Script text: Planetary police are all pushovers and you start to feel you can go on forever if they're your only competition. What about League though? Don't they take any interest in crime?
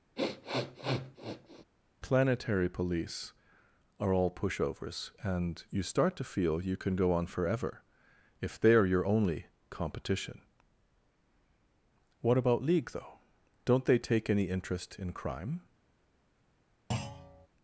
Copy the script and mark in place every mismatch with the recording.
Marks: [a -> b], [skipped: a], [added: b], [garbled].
Planetary police are all pushovers and you start to feel you can go on forever if they're your only competition. What about League though? Don't they take any interest in crime?